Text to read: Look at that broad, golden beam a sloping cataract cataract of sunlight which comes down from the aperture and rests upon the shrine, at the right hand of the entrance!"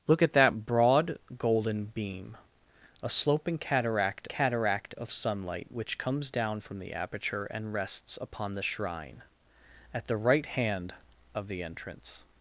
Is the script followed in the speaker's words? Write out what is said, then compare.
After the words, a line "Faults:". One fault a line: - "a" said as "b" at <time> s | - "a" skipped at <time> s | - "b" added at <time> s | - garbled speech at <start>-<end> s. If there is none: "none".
Look at that broad, golden beam a sloping cataract cataract of sunlight which comes down from the aperture and rests upon the shrine, at the right hand of the entrance!"
Faults:
none